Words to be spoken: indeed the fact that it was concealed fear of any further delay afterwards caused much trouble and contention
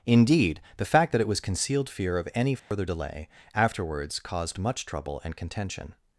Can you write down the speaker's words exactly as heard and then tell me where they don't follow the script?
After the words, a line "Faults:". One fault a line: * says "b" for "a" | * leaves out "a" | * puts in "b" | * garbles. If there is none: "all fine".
indeed the fact that it was concealed fear of any further delay afterwards caused much trouble and contention
Faults:
all fine